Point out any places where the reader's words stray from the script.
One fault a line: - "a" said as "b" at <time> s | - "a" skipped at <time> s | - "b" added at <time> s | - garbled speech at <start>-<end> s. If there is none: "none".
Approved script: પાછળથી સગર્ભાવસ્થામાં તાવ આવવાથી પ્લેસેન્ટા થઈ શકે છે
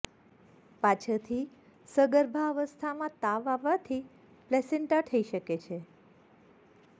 none